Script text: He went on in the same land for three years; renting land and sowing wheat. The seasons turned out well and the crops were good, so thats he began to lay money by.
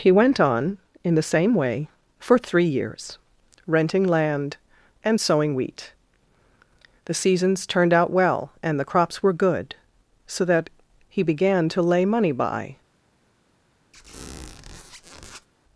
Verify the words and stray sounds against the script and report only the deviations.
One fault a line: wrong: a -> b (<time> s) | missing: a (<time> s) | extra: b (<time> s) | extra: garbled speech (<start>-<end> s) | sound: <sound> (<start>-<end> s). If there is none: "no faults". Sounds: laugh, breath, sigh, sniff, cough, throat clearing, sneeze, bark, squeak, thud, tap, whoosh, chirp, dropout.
wrong: land -> way (1.5 s)
wrong: thats -> that (10.5 s)
sound: squeak (13.9-15.5 s)